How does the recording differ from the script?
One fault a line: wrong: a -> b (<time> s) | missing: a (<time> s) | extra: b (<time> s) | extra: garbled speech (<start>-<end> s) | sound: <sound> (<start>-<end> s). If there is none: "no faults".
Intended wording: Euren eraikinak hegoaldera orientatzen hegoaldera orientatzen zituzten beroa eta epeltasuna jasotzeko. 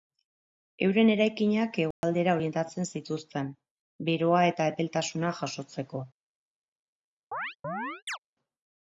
sound: dropout (1.9-2.0 s)
missing: hegoaldera orientatzen (2.9 s)
sound: chirp (7.3-8.2 s)